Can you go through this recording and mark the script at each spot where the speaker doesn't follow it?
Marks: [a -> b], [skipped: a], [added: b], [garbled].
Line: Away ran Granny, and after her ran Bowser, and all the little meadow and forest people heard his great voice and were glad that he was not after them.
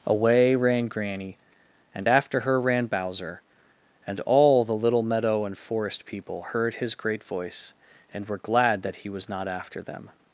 Away ran Granny, and after her ran Bowser, and all the little meadow and forest people heard his great voice and were glad that he was not after them.